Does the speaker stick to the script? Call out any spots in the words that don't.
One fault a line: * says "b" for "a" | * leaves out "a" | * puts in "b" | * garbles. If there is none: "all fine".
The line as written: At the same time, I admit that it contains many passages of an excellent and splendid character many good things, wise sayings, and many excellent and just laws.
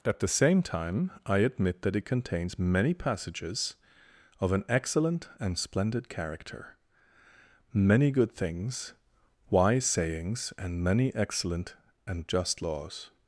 all fine